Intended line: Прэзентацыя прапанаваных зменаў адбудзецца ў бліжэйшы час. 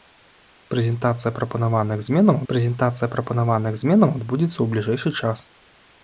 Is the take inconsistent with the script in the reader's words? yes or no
yes